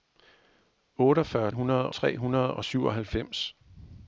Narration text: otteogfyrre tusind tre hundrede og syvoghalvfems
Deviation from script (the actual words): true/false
true